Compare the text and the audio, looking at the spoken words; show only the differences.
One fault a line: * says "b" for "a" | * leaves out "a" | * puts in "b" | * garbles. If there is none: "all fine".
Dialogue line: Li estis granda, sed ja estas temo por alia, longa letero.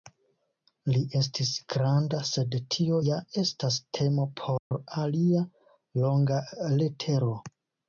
* puts in "tio"